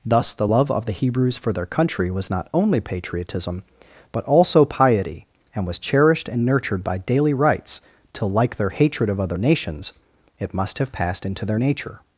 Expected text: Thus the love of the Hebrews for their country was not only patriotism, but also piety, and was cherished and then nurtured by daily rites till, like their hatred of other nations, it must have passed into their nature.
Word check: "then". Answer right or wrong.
wrong